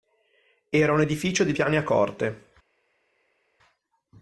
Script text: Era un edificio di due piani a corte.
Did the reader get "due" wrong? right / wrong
wrong